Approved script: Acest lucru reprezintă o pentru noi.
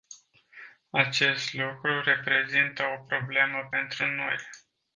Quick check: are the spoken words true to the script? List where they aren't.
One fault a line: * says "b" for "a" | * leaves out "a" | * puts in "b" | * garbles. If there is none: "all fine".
* puts in "problemă"